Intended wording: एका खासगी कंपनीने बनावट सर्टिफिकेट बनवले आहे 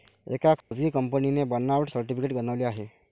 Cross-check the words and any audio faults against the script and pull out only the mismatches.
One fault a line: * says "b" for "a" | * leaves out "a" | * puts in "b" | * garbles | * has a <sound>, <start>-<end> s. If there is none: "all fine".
* has a dropout, 0.6-0.7 s